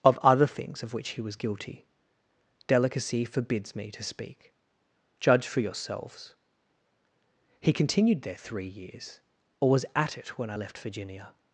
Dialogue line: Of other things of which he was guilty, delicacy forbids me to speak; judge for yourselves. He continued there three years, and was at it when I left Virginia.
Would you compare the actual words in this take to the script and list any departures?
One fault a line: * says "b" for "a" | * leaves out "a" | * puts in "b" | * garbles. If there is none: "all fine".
* says "or" for "and"